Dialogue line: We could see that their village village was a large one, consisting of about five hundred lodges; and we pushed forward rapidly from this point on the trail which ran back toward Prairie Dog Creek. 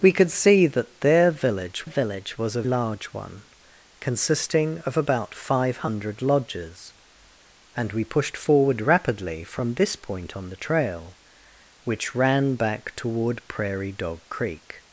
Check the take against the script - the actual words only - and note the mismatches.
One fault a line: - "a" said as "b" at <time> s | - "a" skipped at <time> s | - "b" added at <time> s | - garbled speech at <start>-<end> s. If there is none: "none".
none